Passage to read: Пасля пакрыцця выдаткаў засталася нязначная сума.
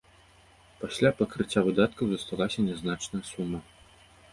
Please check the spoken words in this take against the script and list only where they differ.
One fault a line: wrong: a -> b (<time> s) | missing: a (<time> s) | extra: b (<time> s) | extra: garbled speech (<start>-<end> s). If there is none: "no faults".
no faults